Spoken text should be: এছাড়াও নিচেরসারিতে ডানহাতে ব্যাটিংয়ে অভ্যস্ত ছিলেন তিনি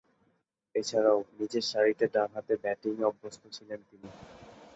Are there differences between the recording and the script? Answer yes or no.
no